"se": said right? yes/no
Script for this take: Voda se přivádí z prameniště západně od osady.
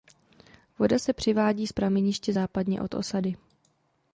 yes